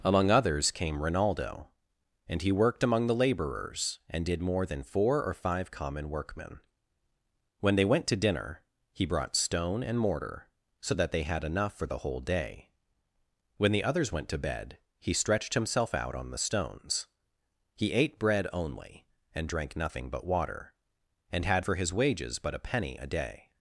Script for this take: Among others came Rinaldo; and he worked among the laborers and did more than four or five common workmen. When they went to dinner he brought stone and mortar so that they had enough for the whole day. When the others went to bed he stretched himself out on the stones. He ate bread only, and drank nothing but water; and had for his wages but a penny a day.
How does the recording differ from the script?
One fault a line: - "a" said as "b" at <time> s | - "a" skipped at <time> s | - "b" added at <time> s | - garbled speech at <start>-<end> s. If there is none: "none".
none